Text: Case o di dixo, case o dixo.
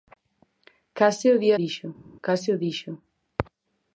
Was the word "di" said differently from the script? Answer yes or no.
no